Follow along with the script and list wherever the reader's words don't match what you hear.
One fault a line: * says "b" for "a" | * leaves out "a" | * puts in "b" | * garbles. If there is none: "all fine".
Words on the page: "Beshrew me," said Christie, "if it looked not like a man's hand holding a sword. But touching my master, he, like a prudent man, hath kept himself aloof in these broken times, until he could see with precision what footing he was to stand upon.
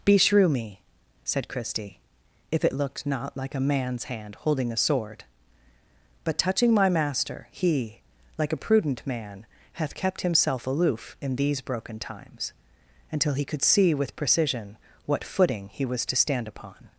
all fine